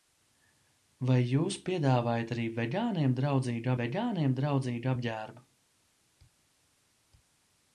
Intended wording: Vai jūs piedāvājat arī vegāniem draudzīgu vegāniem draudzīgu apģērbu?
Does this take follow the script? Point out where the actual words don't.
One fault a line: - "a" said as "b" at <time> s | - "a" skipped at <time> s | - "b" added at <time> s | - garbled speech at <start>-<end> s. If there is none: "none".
none